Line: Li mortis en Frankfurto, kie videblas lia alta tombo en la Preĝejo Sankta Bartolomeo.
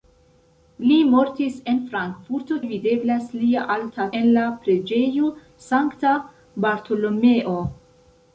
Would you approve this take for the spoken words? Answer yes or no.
no